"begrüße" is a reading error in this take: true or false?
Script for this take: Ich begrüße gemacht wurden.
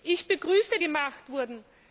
false